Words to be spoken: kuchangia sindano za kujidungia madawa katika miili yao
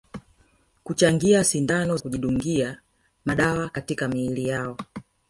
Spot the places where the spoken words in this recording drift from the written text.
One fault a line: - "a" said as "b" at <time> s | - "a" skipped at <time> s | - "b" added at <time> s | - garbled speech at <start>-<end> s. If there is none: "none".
- "za" skipped at 2.0 s